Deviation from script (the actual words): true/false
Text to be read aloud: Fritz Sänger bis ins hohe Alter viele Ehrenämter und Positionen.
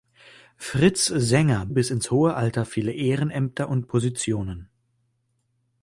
false